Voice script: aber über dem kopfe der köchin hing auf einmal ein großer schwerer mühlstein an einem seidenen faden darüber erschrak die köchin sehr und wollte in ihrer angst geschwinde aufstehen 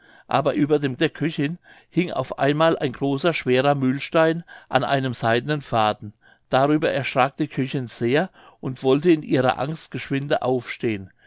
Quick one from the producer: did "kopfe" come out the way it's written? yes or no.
no